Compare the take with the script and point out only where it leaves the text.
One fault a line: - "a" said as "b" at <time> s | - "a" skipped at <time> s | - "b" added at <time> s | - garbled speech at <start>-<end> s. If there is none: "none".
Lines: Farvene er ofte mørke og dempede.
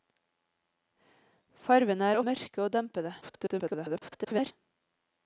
- "ofte" skipped at 2.2 s
- garbled speech at 3.2-4.5 s